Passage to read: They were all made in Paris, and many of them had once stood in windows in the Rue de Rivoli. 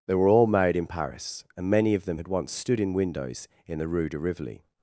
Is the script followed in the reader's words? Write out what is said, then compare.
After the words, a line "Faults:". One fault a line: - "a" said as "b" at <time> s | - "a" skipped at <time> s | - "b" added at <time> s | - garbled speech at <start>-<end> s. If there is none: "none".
They were all made in Paris, and many of them had once stood in windows in the Rue de Rivoli.
Faults:
none